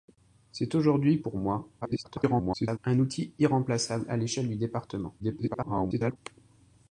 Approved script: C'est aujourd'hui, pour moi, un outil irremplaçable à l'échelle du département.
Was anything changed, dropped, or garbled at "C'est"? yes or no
no